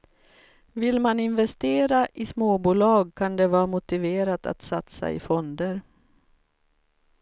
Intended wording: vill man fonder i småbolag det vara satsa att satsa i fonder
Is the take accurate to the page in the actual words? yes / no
no